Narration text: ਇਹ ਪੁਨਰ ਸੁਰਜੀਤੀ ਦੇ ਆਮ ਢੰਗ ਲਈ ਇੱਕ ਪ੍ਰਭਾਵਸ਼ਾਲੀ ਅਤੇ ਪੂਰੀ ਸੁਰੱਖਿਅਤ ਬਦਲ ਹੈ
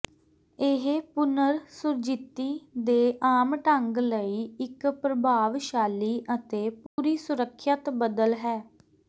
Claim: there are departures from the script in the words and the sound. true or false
true